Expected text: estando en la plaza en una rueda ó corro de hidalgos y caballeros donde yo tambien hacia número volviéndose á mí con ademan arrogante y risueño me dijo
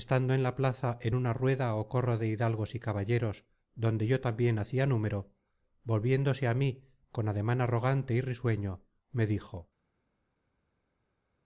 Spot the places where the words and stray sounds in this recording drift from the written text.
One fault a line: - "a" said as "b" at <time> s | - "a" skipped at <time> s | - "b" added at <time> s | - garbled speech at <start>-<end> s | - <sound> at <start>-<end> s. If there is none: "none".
none